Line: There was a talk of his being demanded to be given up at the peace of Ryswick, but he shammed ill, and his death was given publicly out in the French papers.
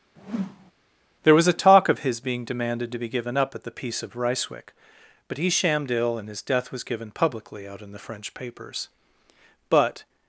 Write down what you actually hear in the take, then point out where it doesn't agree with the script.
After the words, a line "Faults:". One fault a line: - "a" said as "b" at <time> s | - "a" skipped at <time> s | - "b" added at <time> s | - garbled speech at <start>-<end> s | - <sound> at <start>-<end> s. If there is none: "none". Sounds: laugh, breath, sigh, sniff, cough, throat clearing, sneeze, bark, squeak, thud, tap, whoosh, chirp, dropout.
There was a talk of his being demanded to be given up at the peace of Ryswick, but he shammed ill, and his death was given publicly out in the French papers. But
Faults:
- whoosh at 0.2-0.7 s
- "But" added at 9.7 s